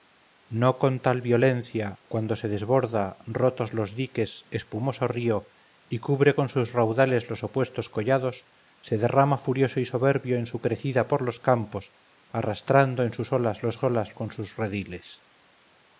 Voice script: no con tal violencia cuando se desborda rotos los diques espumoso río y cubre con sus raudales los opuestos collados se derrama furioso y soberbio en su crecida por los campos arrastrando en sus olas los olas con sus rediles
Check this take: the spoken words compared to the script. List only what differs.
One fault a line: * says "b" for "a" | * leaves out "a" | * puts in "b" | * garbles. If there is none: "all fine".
all fine